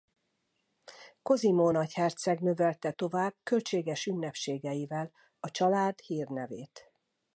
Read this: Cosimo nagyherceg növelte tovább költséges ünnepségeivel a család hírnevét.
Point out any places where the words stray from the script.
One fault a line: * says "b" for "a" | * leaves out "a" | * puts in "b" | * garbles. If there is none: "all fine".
all fine